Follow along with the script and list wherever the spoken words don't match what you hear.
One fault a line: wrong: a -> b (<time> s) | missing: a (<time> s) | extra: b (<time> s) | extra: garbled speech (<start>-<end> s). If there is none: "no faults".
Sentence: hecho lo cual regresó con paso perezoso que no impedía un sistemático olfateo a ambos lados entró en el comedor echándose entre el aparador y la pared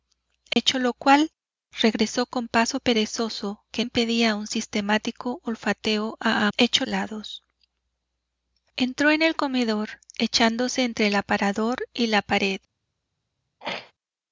missing: no (3.9 s)
wrong: ambos -> hecho (6.6 s)